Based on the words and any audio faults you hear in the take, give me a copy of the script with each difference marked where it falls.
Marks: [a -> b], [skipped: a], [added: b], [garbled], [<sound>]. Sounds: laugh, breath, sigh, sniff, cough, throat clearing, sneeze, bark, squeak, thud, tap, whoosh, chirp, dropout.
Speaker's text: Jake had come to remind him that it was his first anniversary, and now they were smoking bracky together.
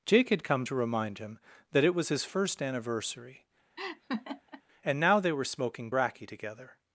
Jake had come to remind him that it was his first anniversary, [laugh] and now they were smoking bracky together.